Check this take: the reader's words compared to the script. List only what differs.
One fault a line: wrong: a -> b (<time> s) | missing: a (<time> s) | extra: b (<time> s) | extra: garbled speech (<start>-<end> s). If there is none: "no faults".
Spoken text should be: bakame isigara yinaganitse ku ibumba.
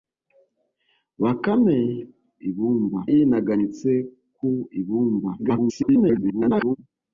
wrong: isigara -> ibumba (2.5 s)
extra: garbled speech (5.4-6.8 s)